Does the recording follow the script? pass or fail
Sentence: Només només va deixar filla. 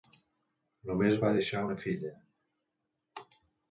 fail